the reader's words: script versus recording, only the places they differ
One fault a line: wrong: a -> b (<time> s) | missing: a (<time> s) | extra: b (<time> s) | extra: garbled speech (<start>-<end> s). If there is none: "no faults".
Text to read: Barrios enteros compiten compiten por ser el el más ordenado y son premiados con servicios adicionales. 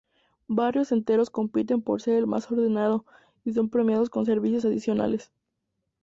missing: compiten (1.8 s)
missing: el (2.2 s)